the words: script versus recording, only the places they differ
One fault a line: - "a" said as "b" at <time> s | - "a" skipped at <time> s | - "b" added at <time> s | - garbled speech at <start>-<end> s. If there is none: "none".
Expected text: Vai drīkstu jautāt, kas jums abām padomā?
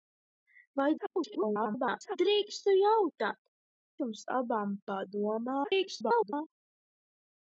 - garbled speech at 1.0-2.2 s
- "kas" skipped at 3.4 s
- garbled speech at 5.6-6.3 s